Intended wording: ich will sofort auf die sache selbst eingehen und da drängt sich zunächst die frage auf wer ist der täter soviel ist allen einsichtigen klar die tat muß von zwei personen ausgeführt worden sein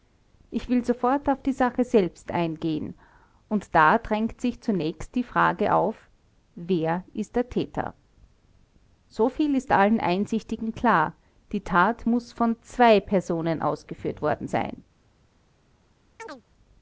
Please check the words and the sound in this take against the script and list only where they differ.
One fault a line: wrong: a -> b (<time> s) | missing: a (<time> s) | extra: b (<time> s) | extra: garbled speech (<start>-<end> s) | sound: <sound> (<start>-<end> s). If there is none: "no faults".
sound: chirp (16.2-16.4 s)